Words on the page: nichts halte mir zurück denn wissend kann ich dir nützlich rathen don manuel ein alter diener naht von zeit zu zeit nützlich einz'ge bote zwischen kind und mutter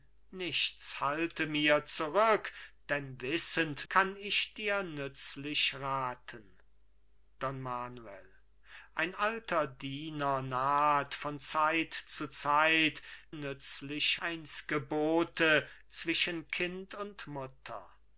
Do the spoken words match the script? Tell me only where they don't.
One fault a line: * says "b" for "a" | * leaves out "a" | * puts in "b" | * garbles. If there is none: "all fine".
all fine